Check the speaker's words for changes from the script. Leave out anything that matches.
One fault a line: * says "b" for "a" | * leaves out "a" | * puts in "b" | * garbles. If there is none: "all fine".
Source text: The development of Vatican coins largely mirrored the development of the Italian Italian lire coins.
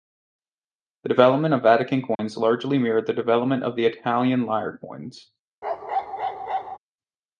* leaves out "Italian"